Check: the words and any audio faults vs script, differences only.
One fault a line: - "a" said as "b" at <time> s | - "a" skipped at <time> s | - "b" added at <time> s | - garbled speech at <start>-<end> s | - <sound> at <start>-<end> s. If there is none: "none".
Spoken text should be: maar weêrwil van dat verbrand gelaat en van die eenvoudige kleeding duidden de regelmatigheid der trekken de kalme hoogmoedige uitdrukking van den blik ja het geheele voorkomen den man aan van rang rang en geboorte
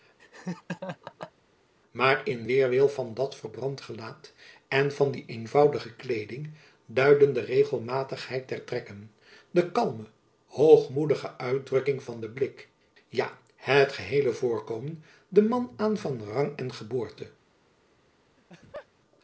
- laugh at 0.2-1.3 s
- "in" added at 2.3 s
- "rang" skipped at 16.6 s
- laugh at 18.4-18.9 s